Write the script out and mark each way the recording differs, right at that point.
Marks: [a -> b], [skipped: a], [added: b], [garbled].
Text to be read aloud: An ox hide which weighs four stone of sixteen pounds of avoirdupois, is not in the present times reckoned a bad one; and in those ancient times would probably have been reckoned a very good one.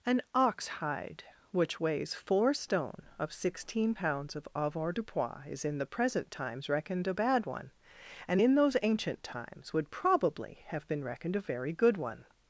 An ox hide which weighs four stone of sixteen pounds of avoirdupois, is [skipped: not] in the present times reckoned a bad one; and in those ancient times would probably have been reckoned a very good one.